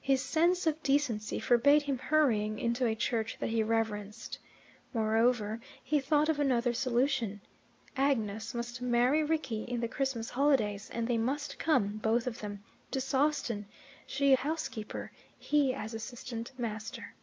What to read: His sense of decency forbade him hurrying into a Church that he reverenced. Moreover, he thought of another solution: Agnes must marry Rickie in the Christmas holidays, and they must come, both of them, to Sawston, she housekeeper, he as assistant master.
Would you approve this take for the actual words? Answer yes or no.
yes